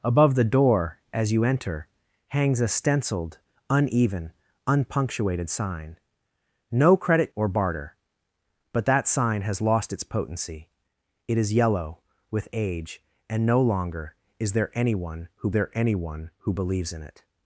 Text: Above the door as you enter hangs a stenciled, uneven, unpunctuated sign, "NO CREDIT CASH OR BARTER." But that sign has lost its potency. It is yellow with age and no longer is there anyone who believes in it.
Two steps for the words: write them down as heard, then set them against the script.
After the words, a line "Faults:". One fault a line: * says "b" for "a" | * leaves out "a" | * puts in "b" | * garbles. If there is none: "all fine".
Above the door as you enter hangs a stenciled, uneven, unpunctuated sign, "NO CREDIT OR BARTER." But that sign has lost its potency. It is yellow with age and no longer is there anyone who there anyone who believes in it.
Faults:
* leaves out "CASH"
* puts in "there anyone who"